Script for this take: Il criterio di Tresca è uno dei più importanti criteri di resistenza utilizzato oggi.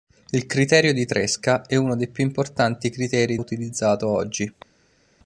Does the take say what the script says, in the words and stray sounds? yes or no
no